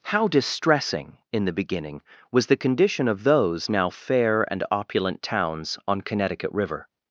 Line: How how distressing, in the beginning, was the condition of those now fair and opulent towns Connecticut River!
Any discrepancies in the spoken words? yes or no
yes